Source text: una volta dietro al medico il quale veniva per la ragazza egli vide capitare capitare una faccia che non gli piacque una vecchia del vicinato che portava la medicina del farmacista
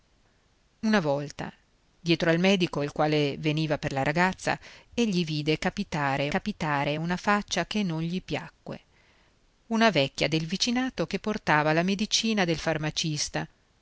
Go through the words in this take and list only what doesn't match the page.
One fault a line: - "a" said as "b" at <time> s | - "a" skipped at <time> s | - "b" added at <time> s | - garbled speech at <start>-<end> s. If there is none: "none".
none